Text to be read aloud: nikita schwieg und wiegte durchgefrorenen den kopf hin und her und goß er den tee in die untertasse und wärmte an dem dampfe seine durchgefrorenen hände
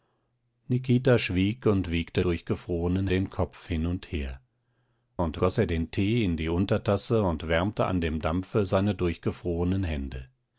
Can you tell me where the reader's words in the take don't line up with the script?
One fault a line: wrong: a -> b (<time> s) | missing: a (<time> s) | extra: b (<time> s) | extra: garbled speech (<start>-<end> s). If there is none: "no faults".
no faults